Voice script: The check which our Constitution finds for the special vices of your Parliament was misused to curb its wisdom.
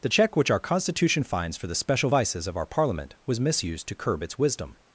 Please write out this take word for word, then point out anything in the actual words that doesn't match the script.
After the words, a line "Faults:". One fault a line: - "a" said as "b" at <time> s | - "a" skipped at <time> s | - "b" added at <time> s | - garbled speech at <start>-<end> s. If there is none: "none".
The check which our Constitution finds for the special vices of our Parliament was misused to curb its wisdom.
Faults:
- "your" said as "our" at 2.5 s